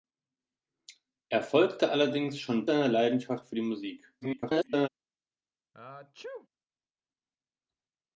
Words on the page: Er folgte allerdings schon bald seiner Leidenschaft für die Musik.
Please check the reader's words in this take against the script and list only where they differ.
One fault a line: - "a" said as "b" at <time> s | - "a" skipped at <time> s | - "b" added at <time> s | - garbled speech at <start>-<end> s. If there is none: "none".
- "bald" skipped at 2.6 s
- garbled speech at 4.2-4.9 s